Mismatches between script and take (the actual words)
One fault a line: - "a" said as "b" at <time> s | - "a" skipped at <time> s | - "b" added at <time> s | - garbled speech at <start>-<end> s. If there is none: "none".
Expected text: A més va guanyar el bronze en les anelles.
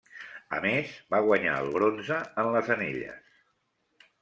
none